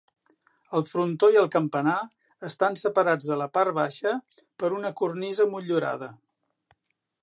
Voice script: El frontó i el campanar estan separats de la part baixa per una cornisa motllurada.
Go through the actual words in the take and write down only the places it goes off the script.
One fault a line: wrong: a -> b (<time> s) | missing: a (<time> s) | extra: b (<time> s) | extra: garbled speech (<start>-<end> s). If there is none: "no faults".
no faults